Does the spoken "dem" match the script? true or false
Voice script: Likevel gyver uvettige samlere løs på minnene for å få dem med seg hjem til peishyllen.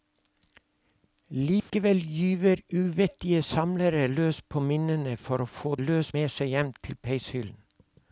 false